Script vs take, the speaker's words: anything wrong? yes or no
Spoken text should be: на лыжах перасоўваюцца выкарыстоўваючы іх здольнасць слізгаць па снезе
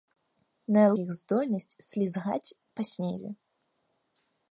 yes